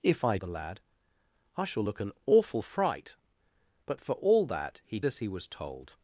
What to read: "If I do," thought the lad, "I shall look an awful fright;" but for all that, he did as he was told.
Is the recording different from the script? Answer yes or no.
yes